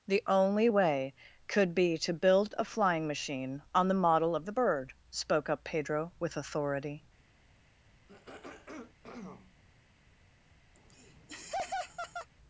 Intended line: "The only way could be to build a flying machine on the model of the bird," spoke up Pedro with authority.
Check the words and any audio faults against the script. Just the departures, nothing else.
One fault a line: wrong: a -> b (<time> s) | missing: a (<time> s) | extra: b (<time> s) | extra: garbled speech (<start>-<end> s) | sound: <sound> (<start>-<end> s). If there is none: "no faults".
sound: throat clearing (8.1-9.6 s)
sound: laugh (10.7-12.3 s)